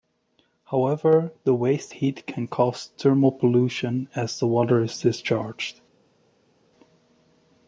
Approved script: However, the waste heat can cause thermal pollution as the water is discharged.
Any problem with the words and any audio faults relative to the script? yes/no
no